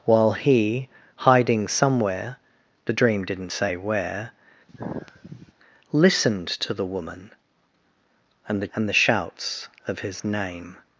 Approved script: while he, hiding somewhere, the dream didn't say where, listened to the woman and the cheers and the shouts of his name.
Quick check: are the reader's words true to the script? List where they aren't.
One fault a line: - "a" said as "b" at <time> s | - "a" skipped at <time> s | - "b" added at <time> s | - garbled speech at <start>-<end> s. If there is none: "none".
- "cheers" skipped at 8.7 s